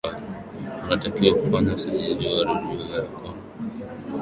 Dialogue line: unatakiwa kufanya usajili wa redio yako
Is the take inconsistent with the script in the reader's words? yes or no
no